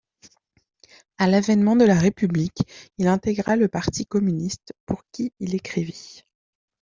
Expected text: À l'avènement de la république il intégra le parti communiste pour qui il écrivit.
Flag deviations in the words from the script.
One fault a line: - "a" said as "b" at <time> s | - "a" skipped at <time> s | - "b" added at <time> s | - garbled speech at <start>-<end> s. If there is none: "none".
none